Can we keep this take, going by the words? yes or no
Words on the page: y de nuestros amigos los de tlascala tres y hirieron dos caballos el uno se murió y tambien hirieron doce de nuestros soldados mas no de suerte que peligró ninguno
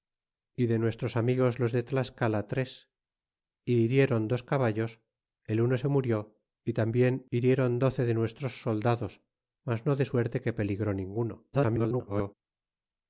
no